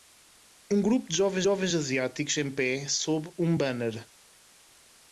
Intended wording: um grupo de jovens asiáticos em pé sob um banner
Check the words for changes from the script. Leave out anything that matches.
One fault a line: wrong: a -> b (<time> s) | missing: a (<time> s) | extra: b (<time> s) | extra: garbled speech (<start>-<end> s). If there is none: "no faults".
extra: jovens (1.4 s)